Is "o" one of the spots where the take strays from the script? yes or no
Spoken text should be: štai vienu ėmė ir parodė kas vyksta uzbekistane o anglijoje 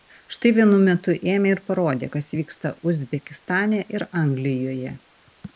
yes